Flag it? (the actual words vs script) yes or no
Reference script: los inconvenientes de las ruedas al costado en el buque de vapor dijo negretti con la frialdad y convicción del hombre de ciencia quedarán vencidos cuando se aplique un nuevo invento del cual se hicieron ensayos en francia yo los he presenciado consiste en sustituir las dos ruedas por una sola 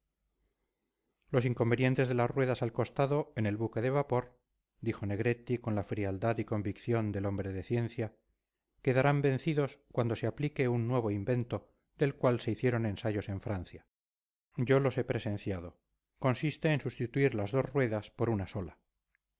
no